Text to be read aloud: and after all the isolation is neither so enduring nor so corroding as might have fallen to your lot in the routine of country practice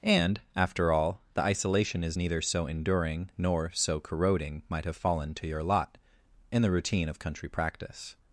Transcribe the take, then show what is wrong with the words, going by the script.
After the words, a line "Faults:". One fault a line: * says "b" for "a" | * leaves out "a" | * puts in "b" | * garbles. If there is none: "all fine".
and after all the isolation is neither so enduring nor so corroding might have fallen to your lot in the routine of country practice
Faults:
* leaves out "as"